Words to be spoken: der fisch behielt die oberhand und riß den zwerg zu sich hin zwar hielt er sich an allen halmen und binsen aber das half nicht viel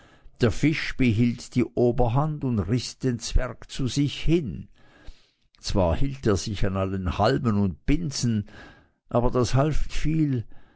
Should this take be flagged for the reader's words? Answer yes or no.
yes